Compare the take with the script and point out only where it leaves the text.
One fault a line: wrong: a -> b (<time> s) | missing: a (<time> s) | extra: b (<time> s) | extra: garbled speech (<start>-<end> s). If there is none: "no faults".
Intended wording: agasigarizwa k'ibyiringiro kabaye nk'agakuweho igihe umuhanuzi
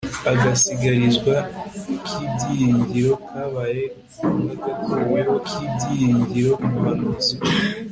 wrong: igihe -> k'ibyiringiro (5.5 s)